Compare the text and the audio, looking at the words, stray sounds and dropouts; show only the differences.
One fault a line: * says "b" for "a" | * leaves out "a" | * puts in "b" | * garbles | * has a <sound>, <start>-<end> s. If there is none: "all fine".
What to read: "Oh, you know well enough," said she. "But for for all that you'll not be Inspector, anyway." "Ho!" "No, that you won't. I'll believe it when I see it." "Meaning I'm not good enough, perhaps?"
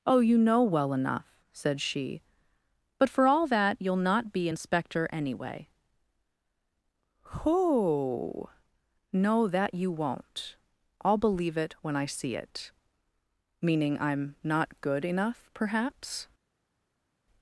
* leaves out "for"